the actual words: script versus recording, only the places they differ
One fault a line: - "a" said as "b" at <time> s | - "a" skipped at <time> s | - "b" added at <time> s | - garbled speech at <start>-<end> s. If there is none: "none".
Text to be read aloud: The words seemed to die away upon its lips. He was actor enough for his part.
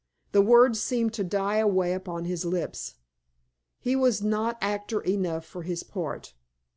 - "its" said as "his" at 2.2 s
- "not" added at 4.2 s